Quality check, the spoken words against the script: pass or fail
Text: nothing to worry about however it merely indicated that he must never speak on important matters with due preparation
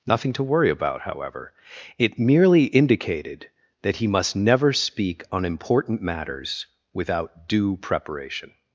fail